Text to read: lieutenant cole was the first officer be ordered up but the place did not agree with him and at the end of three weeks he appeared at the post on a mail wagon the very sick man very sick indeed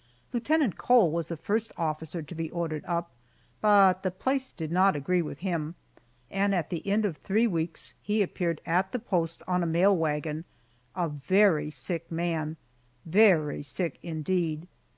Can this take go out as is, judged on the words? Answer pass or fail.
fail